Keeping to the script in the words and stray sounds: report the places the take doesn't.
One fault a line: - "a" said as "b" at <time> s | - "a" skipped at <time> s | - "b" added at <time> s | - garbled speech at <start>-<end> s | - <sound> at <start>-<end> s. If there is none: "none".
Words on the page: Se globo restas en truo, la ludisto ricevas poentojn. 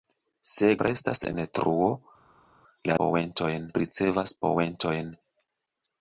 - "globo" skipped at 0.7 s
- "ludisto" said as "poentojn" at 3.0 s